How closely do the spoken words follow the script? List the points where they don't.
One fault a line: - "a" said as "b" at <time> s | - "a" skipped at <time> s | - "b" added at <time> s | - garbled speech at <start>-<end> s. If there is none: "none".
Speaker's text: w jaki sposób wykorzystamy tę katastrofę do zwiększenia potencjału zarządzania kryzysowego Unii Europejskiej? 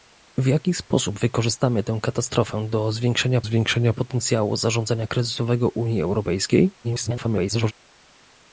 - "zwiększenia" added at 3.4 s
- garbled speech at 6.8-7.7 s